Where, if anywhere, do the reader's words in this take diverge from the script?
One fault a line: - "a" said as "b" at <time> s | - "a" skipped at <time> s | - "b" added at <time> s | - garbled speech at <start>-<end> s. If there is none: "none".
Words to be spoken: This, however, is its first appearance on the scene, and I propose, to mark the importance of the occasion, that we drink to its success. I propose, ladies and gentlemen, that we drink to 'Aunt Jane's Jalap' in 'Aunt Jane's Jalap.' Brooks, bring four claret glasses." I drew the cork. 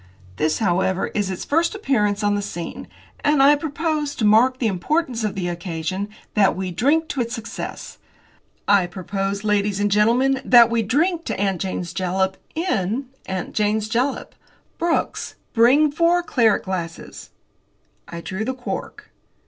none